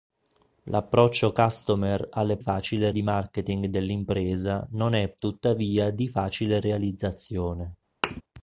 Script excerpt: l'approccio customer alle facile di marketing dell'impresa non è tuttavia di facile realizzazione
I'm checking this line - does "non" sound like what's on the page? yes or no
yes